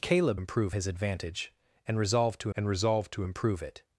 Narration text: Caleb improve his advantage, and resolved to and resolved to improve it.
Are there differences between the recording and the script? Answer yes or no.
no